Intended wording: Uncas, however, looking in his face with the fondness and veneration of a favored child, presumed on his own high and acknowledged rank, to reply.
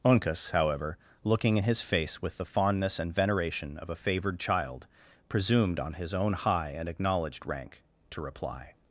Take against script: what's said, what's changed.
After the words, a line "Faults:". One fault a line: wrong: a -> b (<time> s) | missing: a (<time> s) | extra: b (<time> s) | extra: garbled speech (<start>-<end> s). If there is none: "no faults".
Uncas, however, looking in his face with the fondness and veneration of a favored child, presumed on his own high and acknowledged rank, to reply.
Faults:
no faults